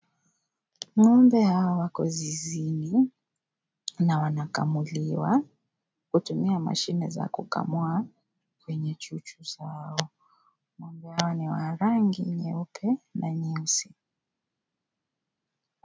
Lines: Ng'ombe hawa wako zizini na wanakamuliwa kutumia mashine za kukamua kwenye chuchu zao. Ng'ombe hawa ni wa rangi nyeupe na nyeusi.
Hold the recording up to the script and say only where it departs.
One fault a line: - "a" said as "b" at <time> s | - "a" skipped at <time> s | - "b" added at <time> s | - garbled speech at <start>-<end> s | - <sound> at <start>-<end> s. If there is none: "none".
none